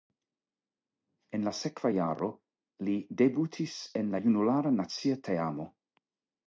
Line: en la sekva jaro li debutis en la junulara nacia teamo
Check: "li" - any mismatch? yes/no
no